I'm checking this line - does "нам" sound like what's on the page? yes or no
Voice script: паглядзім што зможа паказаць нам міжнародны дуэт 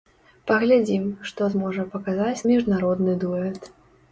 no